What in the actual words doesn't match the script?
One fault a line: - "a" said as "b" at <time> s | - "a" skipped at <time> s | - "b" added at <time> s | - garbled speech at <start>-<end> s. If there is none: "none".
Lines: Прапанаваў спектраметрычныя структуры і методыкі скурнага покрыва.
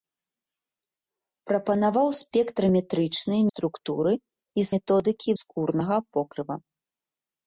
none